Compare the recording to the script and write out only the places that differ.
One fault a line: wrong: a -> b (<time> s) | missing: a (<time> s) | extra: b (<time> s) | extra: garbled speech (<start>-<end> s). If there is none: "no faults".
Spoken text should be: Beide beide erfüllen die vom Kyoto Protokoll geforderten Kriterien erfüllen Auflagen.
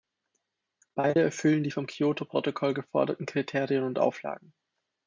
missing: beide (1.2 s)
wrong: erfüllen -> und (3.8 s)